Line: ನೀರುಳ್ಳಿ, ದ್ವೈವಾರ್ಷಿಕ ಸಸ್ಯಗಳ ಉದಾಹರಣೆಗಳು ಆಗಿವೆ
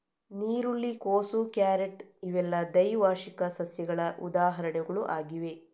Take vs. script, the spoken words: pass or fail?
fail